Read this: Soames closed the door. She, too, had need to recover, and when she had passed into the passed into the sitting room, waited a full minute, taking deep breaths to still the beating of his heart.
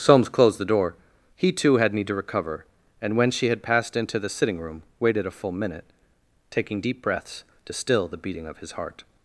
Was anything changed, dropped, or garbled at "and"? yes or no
no